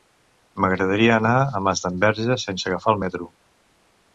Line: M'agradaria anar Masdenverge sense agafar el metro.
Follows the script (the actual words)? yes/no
no